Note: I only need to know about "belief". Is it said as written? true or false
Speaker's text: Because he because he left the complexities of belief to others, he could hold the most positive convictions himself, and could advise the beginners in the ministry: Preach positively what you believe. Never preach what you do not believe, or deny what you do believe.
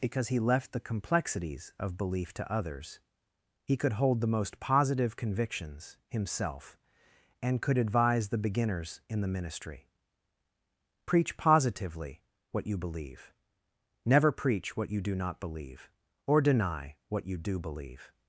true